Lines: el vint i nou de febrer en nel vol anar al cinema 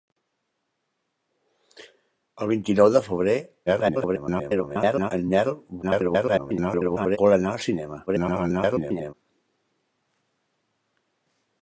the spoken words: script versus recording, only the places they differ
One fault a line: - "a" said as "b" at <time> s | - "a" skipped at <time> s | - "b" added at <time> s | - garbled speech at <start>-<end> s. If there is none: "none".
- garbled speech at 3.7-5.1 s
- garbled speech at 5.8-7.2 s
- garbled speech at 8.1-9.1 s